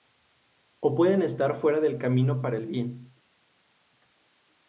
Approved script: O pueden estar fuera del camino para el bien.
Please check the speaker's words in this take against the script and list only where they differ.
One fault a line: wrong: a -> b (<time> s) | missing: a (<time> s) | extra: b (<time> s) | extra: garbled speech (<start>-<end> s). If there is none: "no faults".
no faults